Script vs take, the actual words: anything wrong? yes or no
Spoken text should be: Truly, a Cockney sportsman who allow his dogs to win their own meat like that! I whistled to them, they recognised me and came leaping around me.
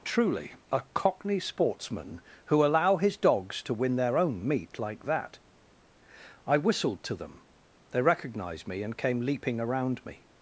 no